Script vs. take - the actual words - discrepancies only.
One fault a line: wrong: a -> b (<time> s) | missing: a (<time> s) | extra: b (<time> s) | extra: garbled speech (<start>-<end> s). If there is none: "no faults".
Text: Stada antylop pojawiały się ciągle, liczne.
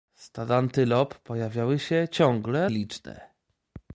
no faults